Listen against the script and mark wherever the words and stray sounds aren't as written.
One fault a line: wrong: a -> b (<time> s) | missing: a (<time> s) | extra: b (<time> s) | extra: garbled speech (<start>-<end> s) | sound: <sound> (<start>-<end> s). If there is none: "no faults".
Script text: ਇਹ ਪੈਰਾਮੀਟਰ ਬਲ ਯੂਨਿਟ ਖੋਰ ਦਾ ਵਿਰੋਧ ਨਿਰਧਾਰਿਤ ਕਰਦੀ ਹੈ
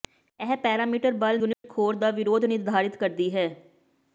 sound: dropout (1.5-1.6 s)